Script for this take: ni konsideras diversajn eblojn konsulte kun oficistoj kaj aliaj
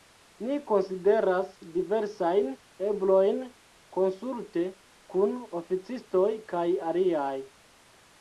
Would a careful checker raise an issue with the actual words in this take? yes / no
no